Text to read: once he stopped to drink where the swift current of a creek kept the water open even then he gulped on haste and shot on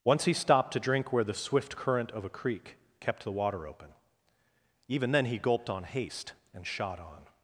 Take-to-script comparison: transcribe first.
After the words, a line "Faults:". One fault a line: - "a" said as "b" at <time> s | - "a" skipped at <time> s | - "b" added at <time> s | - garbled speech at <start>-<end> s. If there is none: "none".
once he stopped to drink where the swift current of a creek kept the water open even then he gulped on haste and shot on
Faults:
none